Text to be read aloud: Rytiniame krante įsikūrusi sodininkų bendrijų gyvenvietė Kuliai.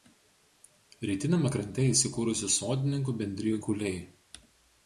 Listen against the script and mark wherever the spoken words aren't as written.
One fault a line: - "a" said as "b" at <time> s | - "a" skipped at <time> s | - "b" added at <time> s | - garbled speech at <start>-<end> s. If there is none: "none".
- "gyvenvietė" skipped at 3.6 s